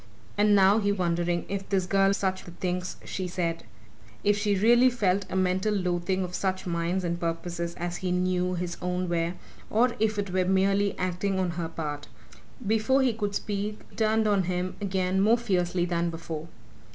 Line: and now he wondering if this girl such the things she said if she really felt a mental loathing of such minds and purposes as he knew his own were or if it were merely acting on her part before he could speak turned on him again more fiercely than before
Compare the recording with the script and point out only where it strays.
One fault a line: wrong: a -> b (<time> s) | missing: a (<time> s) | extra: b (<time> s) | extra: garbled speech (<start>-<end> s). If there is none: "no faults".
no faults